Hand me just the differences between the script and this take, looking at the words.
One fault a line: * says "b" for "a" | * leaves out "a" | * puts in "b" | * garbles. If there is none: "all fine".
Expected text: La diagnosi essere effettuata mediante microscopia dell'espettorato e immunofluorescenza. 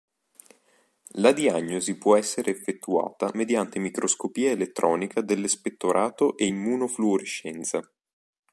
* puts in "può"
* puts in "elettronica"